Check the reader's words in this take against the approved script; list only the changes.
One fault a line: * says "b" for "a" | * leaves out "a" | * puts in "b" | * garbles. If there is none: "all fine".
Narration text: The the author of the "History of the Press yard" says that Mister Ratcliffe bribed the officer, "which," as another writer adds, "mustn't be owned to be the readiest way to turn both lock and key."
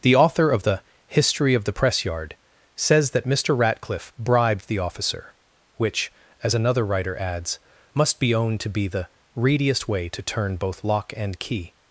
* leaves out "the"
* says "must" for "mustn't"